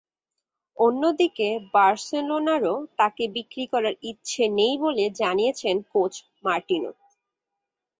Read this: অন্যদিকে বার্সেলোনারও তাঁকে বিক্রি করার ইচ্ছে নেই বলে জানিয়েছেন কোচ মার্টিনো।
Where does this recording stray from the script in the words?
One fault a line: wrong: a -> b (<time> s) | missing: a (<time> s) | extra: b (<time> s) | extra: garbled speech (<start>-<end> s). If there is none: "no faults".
no faults